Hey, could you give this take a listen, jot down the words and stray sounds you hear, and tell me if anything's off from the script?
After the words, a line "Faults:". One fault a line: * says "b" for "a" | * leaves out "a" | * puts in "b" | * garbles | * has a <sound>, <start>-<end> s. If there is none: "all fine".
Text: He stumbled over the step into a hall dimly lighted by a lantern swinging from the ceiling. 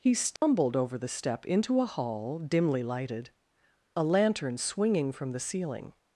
He stumbled over the step into a hall dimly lighted a lantern swinging from the ceiling.
Faults:
* has a dropout, 0.4-0.4 s
* leaves out "by"